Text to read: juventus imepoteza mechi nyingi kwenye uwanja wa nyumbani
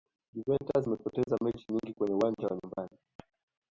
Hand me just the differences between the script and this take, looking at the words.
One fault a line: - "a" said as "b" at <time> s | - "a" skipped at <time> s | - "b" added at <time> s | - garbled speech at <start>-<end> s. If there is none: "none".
none